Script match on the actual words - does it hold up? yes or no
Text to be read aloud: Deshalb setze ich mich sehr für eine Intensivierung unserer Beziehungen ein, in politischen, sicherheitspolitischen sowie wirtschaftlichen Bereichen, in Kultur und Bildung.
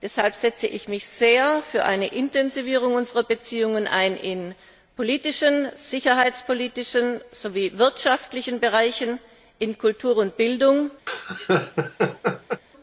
yes